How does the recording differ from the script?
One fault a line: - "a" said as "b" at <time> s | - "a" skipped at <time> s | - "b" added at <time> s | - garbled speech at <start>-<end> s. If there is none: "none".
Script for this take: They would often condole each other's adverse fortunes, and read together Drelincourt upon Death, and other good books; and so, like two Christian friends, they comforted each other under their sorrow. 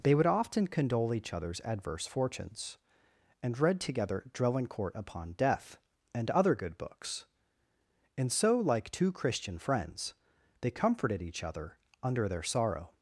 none